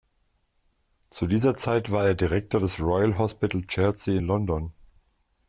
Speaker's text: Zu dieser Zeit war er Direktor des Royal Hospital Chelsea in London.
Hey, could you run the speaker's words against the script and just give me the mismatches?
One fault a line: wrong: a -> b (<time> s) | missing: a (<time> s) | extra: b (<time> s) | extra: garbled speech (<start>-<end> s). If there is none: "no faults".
no faults